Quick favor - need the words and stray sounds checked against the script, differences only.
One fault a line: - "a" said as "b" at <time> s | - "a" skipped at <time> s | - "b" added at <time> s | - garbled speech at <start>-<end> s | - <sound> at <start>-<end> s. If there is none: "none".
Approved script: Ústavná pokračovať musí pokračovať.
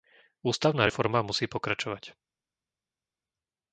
- "pokračovať" said as "reforma" at 0.8 s